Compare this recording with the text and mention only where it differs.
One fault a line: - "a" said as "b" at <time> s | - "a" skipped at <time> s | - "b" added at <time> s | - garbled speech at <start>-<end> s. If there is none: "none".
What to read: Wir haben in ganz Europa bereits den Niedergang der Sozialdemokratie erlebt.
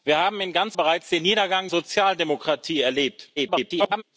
- "Europa" skipped at 0.8 s
- "der" skipped at 1.7 s
- garbled speech at 3.4-4.0 s